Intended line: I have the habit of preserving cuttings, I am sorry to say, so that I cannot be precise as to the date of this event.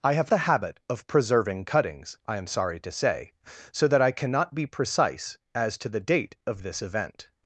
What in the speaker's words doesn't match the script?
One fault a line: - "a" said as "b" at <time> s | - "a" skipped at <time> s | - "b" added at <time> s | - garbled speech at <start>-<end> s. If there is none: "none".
none